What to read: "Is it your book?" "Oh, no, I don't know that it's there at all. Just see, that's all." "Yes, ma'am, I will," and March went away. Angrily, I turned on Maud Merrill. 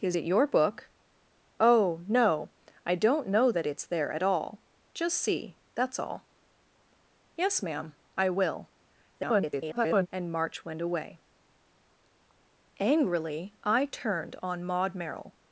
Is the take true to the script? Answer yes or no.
no